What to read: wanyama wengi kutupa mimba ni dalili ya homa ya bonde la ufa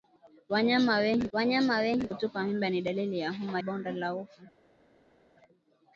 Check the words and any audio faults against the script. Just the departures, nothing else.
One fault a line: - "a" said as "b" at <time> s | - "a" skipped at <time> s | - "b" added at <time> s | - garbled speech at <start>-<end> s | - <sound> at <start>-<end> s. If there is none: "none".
- "wanyama wengi" added at 1.3 s
- "ya" skipped at 3.6 s